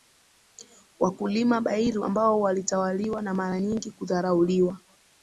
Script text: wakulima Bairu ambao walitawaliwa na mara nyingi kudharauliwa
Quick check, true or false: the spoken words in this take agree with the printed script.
true